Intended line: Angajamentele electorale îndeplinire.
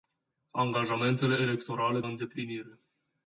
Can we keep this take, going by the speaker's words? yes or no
yes